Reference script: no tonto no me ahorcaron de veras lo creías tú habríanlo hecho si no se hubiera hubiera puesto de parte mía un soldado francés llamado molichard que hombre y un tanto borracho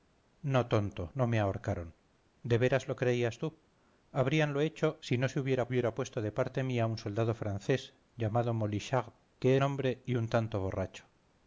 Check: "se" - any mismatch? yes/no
no